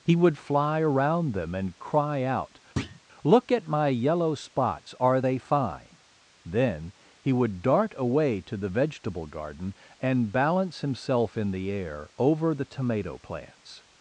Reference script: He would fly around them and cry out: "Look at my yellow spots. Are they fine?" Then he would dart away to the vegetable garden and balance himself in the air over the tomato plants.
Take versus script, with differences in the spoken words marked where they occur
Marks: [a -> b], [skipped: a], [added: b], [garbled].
He would fly around them and cry out: "Look at my yellow spots. Are they fine?" Then he would dart away to the vegetable garden and balance himself in the air over the tomato plants.